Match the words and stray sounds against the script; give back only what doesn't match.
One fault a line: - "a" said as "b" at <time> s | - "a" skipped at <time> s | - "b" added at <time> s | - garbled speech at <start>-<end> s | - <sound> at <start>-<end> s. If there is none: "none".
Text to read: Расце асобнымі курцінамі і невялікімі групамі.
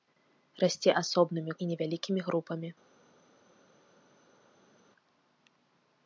- "курцінамі" skipped at 1.5 s